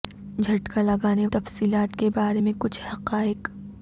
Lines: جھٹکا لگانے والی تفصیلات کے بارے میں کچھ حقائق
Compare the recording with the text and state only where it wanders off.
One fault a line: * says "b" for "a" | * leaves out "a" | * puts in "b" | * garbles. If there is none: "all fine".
* leaves out "والی"